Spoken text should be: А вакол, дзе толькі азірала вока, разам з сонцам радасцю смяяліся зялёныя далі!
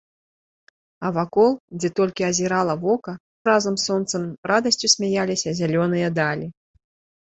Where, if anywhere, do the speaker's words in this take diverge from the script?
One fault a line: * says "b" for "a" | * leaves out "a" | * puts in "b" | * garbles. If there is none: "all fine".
all fine